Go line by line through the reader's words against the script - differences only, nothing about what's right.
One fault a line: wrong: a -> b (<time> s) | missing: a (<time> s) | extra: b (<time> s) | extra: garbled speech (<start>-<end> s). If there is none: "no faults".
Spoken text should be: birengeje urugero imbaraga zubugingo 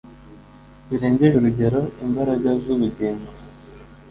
no faults